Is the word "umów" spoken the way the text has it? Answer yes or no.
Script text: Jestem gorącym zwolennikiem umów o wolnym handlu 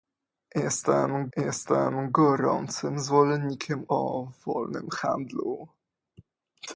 no